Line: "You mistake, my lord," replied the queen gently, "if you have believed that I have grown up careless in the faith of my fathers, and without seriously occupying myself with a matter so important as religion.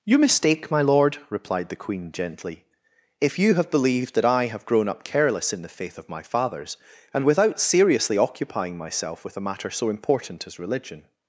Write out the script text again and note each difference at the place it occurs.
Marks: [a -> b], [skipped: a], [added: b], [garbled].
"You mistake, my lord," replied the queen gently, "if you have believed that I have grown up careless in the faith of my fathers, and without seriously occupying myself with a matter so important as religion.